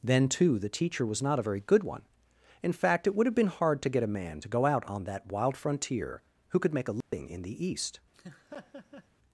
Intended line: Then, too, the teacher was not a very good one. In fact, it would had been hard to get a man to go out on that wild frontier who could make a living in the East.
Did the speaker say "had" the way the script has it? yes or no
no